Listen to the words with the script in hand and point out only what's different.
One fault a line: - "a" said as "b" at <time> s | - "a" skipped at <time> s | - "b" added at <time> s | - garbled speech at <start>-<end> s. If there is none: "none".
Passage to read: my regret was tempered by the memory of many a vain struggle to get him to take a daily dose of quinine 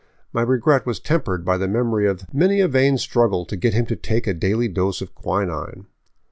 none